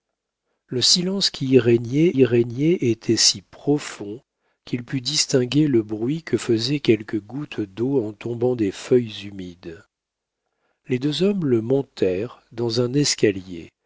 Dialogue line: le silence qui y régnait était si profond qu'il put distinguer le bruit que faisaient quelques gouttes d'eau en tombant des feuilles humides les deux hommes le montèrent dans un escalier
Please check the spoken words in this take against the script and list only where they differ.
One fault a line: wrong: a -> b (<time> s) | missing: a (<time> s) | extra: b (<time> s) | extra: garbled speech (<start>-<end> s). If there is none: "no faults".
extra: y régnait (2.1 s)